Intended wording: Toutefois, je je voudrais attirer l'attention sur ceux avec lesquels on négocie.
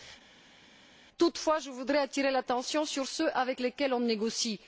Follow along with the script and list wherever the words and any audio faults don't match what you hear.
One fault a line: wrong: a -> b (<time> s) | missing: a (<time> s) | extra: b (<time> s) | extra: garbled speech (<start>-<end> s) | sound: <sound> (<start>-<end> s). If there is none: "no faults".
missing: je (1.7 s)